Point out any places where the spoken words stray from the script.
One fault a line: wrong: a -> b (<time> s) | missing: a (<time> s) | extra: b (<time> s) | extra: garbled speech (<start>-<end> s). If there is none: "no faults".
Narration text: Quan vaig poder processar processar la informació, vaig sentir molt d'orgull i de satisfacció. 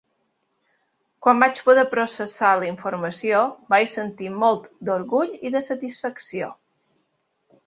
missing: processar (2.5 s)